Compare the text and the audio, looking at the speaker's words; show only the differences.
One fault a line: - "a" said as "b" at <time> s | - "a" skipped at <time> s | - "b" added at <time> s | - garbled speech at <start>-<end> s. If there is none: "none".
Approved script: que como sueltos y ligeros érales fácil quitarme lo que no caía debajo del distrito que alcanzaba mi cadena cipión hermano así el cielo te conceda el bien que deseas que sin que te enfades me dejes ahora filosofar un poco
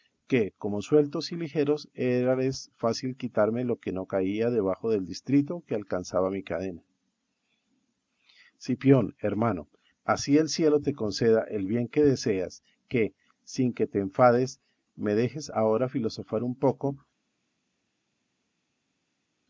none